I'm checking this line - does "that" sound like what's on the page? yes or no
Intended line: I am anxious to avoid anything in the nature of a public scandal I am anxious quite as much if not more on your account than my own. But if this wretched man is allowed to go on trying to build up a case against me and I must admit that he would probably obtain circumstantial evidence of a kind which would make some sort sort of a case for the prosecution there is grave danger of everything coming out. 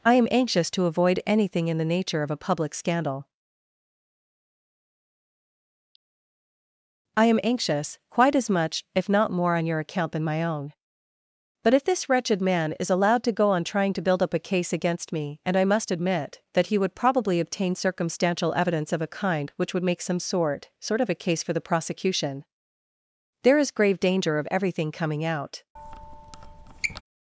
yes